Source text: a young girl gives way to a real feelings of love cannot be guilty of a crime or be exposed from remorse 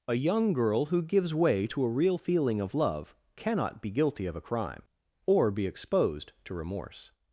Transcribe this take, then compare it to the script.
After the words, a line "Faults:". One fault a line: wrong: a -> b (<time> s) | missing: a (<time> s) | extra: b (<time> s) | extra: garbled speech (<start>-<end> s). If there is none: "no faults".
a young girl who gives way to a real feeling of love cannot be guilty of a crime or be exposed to remorse
Faults:
extra: who (0.8 s)
wrong: feelings -> feeling (2.1 s)
wrong: from -> to (6.4 s)